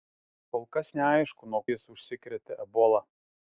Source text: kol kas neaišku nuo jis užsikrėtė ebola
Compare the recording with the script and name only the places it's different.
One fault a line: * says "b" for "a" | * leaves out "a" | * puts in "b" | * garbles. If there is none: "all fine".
all fine